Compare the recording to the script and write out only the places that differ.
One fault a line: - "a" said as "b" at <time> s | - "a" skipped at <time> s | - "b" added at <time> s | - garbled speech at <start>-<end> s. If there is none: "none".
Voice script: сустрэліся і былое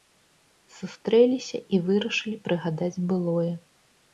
- "вырашылі прыгадаць" added at 1.9 s